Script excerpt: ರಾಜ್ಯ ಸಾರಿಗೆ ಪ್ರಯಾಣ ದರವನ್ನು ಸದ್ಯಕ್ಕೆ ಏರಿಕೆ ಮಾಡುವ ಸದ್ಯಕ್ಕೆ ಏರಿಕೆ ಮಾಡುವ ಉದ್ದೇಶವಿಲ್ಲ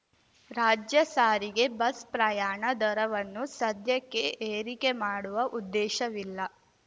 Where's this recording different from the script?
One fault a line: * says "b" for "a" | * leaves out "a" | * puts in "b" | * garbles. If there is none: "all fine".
* puts in "ಬಸ್"
* leaves out "ಸದ್ಯಕ್ಕೆ ಏರಿಕೆ ಮಾಡುವ"